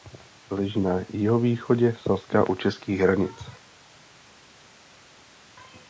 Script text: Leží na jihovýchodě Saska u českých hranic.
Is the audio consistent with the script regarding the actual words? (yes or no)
yes